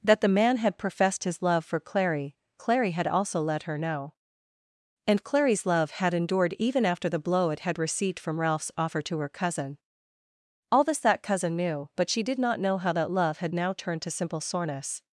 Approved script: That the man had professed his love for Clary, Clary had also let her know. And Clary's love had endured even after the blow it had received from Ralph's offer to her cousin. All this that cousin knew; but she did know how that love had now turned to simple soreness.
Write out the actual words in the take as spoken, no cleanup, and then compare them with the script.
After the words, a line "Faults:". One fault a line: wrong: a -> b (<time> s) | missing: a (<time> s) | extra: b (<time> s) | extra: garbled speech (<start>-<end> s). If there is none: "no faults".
That the man had professed his love for Clary, Clary had also let her know. And Clary's love had endured even after the blow it had received from Ralph's offer to her cousin. All this that cousin knew; but she did not know how that love had now turned to simple soreness.
Faults:
extra: not (12.4 s)